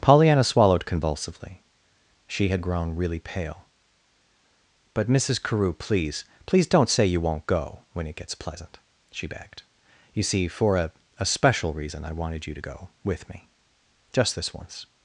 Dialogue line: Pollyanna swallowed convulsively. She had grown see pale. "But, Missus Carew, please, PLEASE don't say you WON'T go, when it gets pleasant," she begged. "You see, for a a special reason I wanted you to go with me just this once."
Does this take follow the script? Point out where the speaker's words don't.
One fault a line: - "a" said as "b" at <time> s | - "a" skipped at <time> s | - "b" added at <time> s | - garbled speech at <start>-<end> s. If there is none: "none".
- "see" said as "really" at 3.0 s